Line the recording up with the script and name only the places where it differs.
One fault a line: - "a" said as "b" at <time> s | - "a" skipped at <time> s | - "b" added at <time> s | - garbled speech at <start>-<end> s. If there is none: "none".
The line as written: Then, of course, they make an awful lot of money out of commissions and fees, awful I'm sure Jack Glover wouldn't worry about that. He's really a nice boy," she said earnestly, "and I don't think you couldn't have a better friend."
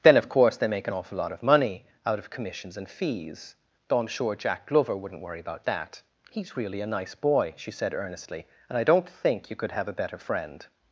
- "awful" said as "though" at 3.9 s
- "couldn't" said as "could" at 9.6 s